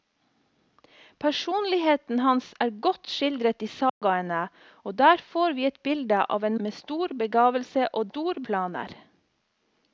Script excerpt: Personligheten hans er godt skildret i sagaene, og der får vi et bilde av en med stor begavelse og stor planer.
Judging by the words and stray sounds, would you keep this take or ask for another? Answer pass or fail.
fail